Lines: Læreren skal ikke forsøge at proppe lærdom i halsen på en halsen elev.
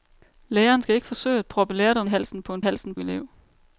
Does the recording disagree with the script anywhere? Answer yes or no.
no